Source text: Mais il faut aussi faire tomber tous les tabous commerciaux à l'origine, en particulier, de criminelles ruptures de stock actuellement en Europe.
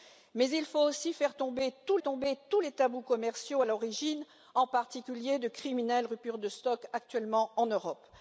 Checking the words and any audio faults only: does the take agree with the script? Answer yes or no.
no